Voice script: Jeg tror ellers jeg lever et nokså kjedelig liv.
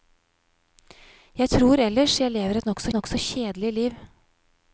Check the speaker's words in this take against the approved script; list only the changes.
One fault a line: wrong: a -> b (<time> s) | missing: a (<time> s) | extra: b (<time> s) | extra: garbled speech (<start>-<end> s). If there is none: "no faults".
extra: nokså (2.9 s)